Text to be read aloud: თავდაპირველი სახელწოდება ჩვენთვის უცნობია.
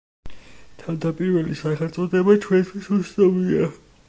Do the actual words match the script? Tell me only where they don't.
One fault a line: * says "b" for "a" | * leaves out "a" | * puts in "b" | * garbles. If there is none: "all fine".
all fine